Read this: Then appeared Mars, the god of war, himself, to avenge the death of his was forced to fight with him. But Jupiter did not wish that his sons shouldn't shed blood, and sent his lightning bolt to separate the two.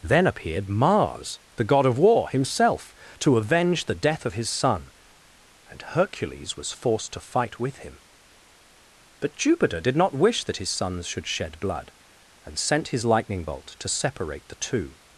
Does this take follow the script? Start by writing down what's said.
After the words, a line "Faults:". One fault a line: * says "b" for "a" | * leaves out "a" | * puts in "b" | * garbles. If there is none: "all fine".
Then appeared Mars, the god of war, himself, to avenge the death of his son; and Hercules was forced to fight with him. But Jupiter did not wish that his sons should shed blood, and sent his lightning bolt to separate the two.
Faults:
* puts in "son and Hercules"
* says "should" for "shouldn't"